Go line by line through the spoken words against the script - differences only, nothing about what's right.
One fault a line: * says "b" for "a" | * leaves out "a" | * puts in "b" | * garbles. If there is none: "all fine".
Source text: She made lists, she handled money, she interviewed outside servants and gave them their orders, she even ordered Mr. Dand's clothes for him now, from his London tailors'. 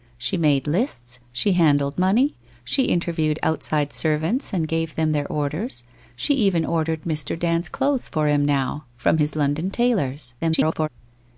* garbles